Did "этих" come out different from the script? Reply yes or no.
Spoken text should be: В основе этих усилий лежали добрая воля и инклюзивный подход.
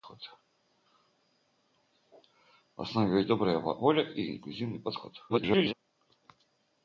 yes